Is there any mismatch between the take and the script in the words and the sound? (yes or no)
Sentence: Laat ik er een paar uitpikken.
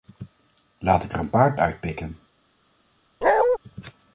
yes